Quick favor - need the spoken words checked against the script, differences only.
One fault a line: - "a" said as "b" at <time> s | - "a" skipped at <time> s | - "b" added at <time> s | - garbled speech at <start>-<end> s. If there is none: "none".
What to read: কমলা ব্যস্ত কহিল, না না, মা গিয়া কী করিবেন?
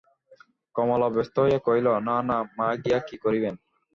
- "হইয়া" added at 1.4 s